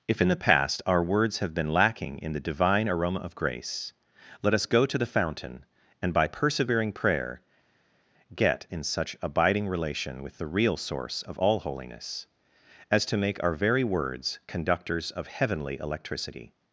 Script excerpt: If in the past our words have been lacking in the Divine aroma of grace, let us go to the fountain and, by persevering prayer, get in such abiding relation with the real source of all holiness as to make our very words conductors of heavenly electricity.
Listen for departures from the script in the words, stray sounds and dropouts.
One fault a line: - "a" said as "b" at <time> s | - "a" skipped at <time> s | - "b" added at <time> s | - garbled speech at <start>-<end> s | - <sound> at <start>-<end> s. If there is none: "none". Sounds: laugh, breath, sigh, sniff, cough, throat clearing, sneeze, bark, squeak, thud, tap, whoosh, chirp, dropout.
none